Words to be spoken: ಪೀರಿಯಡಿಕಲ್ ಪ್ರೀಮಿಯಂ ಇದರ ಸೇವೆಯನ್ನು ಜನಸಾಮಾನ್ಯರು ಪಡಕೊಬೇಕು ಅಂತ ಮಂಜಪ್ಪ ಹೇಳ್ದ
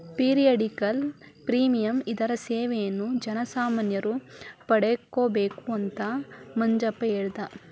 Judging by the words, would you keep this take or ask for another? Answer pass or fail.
pass